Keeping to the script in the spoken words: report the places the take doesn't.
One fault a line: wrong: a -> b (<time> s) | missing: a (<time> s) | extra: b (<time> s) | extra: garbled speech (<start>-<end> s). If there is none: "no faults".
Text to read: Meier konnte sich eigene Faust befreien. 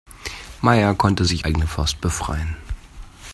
no faults